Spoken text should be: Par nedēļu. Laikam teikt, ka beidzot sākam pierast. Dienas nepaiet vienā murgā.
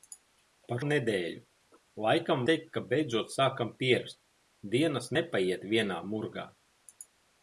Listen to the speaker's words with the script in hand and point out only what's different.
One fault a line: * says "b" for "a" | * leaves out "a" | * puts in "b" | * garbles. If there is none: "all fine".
all fine